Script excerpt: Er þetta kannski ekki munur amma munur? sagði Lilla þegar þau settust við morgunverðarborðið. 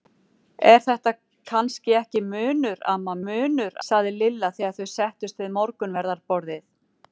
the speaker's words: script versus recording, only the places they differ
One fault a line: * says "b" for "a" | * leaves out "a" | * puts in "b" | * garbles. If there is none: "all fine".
all fine